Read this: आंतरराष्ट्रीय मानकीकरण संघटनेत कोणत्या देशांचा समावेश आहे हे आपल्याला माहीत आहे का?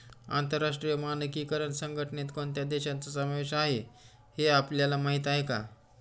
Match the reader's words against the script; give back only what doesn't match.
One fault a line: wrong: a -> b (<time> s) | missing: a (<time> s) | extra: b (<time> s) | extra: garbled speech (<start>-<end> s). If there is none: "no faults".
no faults